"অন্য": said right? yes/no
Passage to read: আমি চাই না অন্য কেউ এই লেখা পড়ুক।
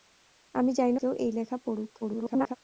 no